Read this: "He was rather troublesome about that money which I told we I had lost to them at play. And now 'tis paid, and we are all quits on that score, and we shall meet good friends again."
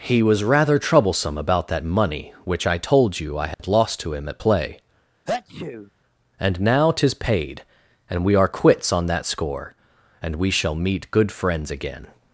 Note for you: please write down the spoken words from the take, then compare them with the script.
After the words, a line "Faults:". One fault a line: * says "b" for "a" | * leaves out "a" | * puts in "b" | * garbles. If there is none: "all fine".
"He was rather troublesome about that money which I told you I had lost to him at play. And now 'tis paid, and we are quits on that score, and we shall meet good friends again."
Faults:
* says "you" for "we"
* says "him" for "them"
* leaves out "all"